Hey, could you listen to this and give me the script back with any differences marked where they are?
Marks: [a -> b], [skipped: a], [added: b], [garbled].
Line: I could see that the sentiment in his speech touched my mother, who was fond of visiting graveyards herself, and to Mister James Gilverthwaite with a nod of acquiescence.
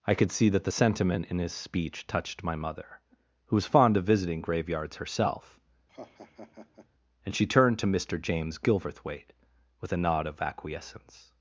I could see that the sentiment in his speech touched my mother, who was fond of visiting graveyards herself, and [added: she turned] to Mister James Gilverthwaite with a nod of acquiescence.